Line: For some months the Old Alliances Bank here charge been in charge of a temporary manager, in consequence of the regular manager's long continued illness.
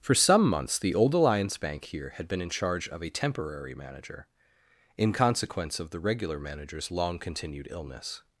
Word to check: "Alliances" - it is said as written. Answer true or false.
false